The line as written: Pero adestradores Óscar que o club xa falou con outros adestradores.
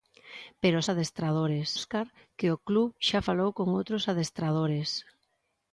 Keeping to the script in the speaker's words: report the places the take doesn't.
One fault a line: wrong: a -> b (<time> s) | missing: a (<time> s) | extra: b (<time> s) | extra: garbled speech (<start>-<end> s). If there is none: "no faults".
no faults